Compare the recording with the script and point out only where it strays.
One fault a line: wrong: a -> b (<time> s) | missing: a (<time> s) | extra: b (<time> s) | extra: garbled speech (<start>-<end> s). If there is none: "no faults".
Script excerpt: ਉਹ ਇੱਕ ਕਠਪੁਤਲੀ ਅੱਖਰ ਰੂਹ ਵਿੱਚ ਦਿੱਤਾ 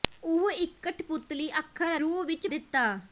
no faults